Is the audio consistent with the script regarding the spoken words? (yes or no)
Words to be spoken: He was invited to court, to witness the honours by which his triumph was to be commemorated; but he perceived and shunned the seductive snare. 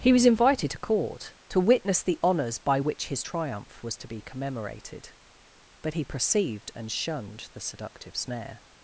yes